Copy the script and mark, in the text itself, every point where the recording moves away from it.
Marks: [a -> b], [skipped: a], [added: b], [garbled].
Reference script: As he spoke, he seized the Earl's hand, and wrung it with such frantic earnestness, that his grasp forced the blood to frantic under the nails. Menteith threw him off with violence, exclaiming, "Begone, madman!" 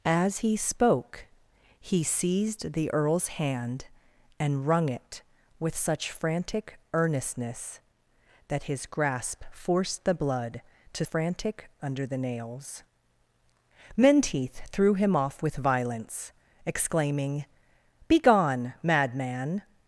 As he spoke, he seized the Earl's hand, and wrung it with such frantic earnestness, that his grasp forced the blood to frantic under the nails. Menteith threw him off with violence, exclaiming, "Begone, madman!"